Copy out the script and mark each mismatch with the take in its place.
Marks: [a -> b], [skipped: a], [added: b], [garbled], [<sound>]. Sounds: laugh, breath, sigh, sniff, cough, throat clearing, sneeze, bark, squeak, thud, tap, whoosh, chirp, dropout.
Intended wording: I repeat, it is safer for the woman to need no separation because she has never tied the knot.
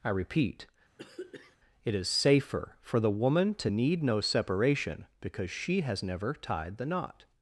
I repeat, [throat clearing] it is safer for the woman to need no separation because she has never tied the knot.